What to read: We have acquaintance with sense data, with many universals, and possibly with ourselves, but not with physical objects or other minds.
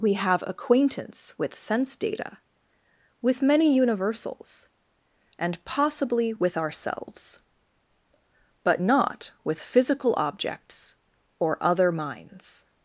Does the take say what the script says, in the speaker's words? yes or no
yes